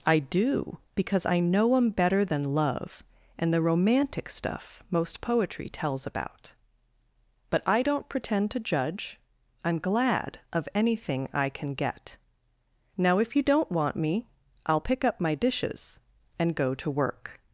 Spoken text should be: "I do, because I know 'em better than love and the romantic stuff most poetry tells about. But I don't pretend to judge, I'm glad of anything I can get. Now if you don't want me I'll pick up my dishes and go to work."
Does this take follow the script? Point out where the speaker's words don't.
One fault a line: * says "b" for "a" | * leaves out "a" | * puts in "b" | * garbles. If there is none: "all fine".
all fine